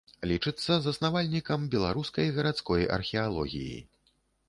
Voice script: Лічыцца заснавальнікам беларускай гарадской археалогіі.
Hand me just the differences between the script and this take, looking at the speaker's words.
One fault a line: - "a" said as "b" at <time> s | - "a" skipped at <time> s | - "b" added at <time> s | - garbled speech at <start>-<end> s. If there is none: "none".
none